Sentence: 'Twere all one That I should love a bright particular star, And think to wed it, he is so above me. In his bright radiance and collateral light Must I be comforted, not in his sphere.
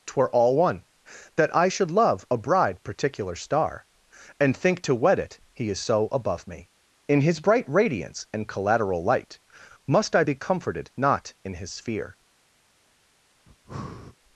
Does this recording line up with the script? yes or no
no